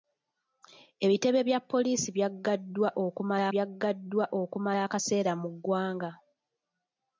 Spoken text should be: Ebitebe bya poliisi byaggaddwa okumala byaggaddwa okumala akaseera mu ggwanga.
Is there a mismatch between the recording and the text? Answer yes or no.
no